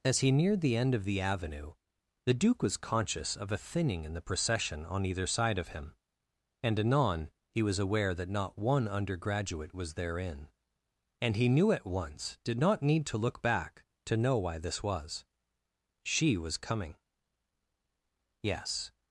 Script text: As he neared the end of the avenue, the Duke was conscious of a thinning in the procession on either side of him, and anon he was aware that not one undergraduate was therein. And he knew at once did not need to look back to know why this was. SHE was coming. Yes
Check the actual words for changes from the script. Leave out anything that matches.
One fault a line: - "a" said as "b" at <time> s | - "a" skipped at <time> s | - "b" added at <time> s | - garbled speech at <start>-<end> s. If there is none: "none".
none